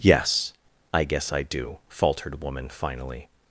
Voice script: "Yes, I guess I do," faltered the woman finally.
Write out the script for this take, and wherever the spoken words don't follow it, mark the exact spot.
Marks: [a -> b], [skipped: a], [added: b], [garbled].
"Yes, I guess I do," faltered [skipped: the] woman finally.